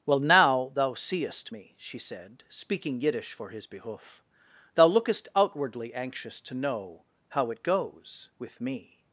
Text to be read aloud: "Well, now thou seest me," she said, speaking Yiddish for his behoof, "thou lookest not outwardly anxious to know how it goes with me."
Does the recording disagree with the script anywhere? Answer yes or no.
yes